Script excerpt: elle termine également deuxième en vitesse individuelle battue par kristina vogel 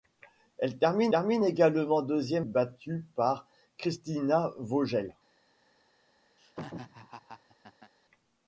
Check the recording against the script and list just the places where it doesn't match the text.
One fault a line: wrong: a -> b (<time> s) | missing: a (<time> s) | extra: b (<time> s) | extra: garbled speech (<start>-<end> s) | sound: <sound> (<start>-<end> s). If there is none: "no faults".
extra: termine (1.1 s)
missing: en vitesse individuelle (2.5 s)
sound: laugh (6.4-7.9 s)